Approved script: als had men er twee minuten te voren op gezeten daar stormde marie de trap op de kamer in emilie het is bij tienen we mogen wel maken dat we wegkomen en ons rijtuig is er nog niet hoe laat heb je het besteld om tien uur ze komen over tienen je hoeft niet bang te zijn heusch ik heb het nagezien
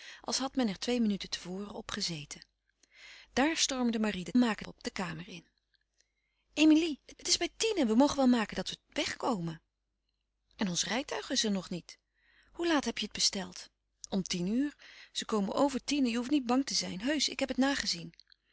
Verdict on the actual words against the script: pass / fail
fail